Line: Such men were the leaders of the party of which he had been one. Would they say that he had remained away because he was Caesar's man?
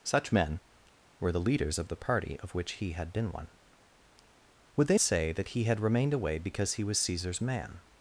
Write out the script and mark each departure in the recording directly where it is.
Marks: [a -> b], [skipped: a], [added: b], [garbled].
Such men were the leaders of the party of which he had been one. Would they say that he had remained away because he was Caesar's man?